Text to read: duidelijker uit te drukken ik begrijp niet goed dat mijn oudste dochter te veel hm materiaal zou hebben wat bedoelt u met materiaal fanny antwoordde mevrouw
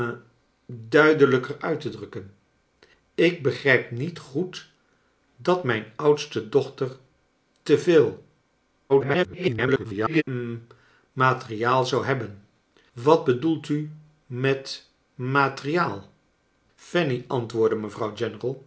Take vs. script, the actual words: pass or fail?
fail